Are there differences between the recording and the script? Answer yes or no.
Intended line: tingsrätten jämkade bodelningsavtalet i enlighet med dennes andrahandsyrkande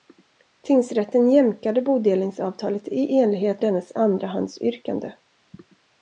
yes